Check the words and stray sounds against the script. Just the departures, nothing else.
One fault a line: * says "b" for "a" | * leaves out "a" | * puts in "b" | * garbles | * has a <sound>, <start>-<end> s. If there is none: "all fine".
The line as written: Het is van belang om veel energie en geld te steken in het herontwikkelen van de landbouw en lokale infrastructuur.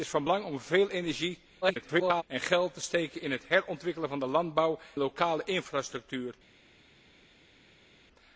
* garbles
* leaves out "en"